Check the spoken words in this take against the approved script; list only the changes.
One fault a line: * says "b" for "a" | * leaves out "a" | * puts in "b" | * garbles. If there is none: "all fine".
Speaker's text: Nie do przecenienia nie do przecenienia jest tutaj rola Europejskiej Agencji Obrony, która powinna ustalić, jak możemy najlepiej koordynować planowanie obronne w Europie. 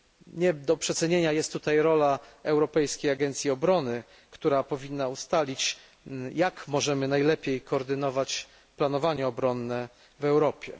* leaves out "nie do przecenienia"